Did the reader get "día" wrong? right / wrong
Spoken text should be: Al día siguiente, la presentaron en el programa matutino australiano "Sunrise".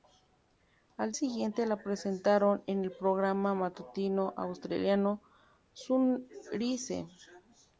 wrong